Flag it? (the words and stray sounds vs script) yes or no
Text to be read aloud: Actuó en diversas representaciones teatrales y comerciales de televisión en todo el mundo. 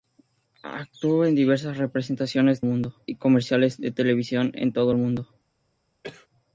yes